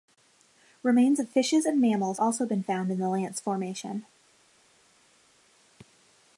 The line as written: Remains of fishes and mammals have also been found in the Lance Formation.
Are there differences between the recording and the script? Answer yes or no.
yes